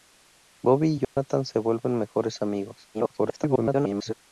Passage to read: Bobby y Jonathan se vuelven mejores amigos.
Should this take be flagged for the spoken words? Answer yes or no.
yes